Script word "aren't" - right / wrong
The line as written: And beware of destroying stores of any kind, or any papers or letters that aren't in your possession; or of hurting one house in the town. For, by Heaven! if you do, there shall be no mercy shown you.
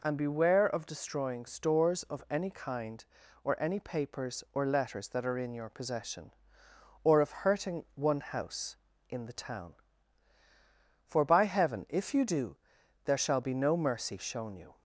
wrong